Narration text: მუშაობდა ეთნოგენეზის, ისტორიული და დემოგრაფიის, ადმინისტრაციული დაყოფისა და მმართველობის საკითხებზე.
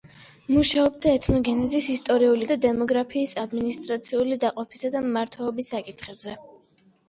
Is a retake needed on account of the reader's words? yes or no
no